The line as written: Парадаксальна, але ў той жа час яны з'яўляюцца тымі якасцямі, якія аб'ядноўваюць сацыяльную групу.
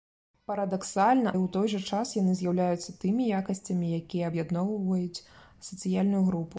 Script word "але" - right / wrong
wrong